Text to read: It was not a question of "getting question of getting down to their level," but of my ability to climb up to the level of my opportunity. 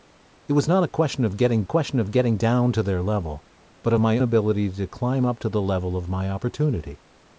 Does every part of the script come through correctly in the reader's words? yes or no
yes